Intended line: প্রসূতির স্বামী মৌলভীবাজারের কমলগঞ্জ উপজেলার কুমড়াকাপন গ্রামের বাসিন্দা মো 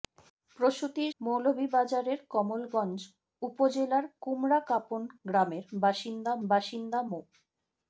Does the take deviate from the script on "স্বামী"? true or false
true